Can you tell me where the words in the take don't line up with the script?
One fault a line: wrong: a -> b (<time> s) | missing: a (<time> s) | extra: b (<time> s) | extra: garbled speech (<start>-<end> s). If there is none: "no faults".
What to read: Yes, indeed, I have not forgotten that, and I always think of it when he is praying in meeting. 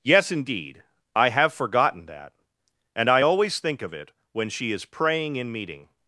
missing: not (1.5 s)
wrong: he -> she (4.5 s)